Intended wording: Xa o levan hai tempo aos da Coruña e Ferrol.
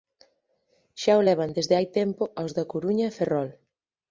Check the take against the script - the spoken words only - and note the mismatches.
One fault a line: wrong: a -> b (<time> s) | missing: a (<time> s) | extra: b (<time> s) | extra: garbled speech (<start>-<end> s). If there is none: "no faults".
extra: desde (1.6 s)